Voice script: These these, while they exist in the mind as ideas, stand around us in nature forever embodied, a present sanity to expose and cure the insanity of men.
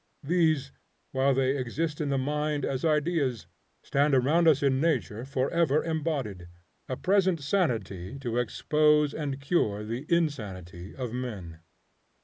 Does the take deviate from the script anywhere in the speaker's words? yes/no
yes